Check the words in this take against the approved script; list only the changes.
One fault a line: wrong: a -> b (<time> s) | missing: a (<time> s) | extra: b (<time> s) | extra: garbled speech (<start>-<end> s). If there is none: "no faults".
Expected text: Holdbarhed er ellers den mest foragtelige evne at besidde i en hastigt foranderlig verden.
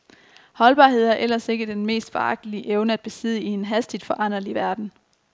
extra: ikke (1.5 s)